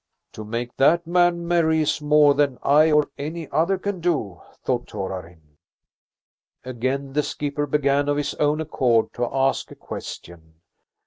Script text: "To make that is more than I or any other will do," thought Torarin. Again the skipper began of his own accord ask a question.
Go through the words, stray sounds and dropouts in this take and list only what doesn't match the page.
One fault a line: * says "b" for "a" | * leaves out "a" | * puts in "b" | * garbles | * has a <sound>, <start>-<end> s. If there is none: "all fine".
* puts in "man merry"
* says "can" for "will"
* puts in "to"